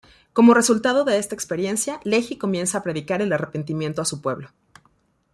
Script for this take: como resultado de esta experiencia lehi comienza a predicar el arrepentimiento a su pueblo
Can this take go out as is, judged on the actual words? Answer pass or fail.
pass